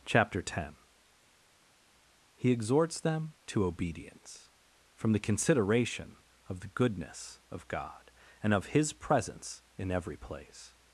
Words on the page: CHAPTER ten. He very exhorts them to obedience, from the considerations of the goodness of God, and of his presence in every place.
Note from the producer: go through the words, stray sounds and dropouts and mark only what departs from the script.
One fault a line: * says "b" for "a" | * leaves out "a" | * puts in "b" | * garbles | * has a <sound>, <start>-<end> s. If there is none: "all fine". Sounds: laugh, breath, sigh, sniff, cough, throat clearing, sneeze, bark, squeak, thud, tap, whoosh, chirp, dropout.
* leaves out "very"
* says "consideration" for "considerations"